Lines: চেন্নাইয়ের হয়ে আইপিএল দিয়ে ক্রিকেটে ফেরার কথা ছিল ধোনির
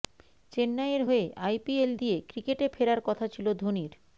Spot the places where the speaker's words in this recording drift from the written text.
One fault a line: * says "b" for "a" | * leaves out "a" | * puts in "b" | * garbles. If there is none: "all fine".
all fine